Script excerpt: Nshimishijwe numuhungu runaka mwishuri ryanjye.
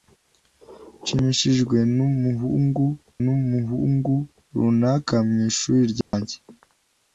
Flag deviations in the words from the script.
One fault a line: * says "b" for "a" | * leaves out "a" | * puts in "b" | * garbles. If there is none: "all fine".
* puts in "numuhungu"